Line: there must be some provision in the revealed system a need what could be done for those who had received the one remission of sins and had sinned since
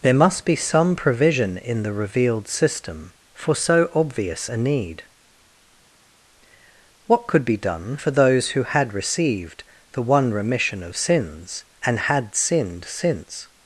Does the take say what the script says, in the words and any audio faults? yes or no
no